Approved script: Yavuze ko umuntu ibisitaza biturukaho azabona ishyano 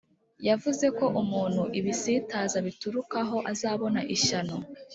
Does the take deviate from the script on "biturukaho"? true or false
false